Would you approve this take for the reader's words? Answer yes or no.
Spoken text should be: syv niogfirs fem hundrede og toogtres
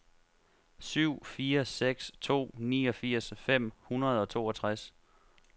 no